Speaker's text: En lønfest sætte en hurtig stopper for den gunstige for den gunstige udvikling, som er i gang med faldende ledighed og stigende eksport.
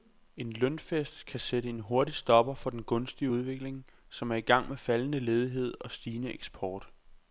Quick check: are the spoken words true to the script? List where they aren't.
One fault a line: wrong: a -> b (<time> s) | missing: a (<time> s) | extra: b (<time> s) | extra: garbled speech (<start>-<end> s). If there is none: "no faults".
extra: kan (1.2 s)
missing: for den gunstige (3.3 s)